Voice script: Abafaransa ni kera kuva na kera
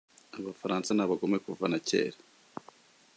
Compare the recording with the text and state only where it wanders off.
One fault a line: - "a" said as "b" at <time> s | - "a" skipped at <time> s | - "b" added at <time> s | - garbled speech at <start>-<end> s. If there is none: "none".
- "kera" said as "abagome" at 1.0 s